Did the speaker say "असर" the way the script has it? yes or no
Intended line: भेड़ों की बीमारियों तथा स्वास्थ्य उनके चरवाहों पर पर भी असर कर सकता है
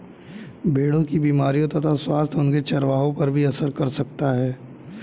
yes